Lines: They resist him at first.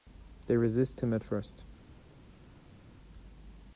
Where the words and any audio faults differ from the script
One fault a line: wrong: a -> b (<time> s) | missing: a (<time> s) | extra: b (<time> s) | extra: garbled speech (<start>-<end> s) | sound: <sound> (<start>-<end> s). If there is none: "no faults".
no faults